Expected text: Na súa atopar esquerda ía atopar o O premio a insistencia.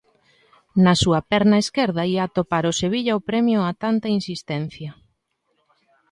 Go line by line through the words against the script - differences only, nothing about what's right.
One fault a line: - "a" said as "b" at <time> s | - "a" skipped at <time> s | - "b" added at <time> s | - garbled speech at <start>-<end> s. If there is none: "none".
- "atopar" said as "perna" at 1.3 s
- "Sevilla" added at 2.8 s
- "tanta" added at 3.8 s